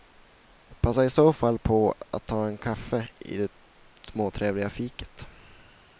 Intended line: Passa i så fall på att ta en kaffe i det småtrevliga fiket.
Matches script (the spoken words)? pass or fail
pass